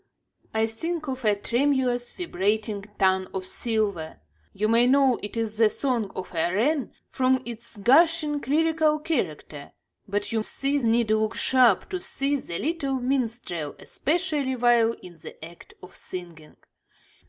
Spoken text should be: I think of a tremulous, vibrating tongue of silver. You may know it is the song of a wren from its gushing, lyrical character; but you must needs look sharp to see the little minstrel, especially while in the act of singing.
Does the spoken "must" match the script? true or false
false